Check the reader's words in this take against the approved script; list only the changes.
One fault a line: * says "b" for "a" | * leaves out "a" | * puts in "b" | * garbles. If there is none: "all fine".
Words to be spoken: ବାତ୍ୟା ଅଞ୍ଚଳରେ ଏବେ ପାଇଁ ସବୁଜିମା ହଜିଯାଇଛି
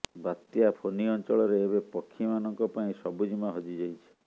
* puts in "ଫୋନି"
* puts in "ପକ୍ଷୀମାନଙ୍କ"